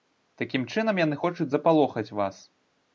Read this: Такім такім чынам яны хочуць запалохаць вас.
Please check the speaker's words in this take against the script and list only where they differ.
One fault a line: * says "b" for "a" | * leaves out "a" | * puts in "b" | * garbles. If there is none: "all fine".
* leaves out "такім"